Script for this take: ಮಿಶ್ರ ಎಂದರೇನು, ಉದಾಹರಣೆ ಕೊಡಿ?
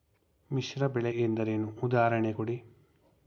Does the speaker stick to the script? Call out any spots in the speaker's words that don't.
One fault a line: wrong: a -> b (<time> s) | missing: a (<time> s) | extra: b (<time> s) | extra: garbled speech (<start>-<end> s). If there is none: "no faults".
extra: ಬೆಳೆ (0.9 s)